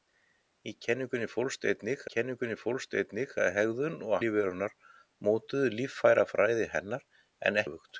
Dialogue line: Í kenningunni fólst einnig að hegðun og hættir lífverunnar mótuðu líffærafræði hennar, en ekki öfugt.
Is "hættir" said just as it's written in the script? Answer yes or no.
no